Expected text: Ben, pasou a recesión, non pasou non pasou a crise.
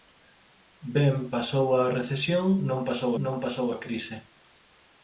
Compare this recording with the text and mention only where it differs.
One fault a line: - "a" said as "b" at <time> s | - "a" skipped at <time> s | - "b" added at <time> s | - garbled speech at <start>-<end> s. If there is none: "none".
none